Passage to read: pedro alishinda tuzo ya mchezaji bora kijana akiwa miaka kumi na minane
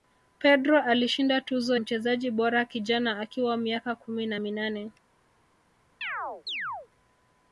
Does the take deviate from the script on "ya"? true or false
true